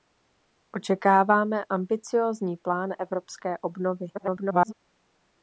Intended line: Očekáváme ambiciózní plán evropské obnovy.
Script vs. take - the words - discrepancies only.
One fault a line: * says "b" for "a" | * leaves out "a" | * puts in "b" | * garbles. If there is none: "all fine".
* garbles